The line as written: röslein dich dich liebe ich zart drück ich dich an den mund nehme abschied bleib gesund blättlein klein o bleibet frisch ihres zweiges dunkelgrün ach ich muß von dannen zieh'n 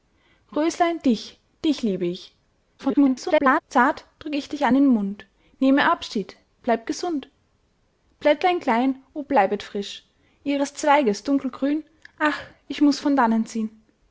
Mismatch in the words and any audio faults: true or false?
true